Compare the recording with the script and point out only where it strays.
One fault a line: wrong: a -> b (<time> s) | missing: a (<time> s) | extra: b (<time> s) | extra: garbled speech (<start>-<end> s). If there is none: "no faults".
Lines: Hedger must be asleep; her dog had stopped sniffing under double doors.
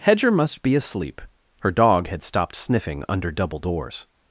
no faults